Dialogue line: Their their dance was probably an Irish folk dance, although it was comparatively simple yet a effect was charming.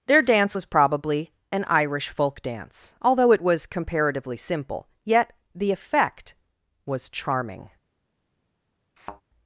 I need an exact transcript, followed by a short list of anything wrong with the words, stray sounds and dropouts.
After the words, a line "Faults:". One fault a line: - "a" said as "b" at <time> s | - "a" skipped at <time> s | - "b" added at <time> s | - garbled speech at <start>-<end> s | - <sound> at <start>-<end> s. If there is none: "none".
Their dance was probably an Irish folk dance, although it was comparatively simple yet the effect was charming.
Faults:
- "their" skipped at 0.2 s
- "a" said as "the" at 5.5 s
- thud at 9.0-9.2 s